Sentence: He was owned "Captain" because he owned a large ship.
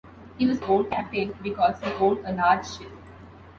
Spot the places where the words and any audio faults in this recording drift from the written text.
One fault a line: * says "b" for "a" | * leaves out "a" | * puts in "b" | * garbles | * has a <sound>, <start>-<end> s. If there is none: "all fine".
all fine